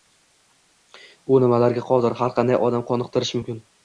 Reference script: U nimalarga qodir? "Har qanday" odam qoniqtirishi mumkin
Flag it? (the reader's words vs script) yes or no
no